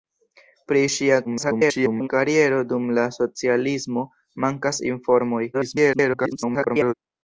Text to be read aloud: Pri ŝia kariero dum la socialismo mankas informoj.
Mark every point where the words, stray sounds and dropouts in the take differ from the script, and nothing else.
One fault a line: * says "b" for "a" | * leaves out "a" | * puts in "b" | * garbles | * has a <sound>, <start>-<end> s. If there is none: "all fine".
* garbles
* garbles